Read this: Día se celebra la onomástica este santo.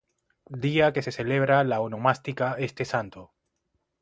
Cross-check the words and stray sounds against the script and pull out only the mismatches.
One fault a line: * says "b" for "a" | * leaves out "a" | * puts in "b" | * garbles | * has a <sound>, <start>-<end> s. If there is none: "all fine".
* puts in "que"